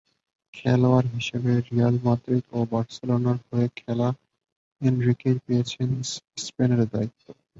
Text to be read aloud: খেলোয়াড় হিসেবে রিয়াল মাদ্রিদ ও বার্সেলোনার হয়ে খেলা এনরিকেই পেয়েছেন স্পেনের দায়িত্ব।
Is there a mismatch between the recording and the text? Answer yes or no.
no